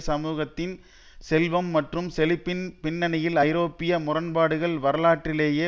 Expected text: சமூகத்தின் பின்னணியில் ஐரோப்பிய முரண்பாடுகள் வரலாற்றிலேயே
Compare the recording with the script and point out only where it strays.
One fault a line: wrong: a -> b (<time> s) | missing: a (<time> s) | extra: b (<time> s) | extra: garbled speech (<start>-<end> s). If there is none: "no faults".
extra: செல்வம் மற்றும் செழிப்பின் (1.2 s)